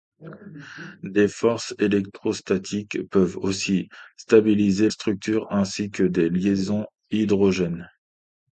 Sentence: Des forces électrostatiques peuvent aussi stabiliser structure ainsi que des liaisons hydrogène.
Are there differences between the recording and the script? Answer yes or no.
no